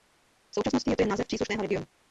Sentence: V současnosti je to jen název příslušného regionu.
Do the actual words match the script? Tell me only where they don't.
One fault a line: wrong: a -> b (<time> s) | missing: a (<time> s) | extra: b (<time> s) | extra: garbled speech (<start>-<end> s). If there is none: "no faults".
no faults